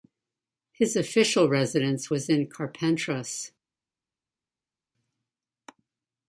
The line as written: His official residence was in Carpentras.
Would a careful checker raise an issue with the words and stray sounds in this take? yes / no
no